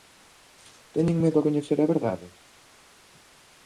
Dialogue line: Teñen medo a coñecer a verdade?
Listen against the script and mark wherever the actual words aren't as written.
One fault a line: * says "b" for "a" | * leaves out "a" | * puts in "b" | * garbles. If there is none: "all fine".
all fine